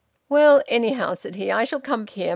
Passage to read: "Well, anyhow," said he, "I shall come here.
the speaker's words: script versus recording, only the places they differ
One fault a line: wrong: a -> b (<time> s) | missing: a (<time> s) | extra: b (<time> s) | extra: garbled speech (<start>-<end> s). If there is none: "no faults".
no faults